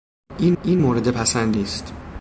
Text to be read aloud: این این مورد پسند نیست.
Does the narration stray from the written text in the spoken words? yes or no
no